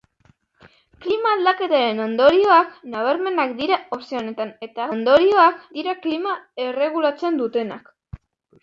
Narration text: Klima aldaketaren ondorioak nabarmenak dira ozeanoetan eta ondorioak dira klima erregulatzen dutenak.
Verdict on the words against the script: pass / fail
pass